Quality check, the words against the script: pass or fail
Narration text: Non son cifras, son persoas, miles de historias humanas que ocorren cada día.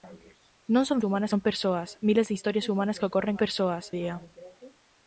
fail